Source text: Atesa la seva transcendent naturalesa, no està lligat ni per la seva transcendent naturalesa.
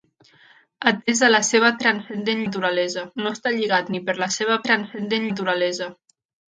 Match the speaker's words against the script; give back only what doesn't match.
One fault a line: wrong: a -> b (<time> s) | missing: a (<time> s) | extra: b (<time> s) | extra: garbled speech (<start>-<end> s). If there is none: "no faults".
no faults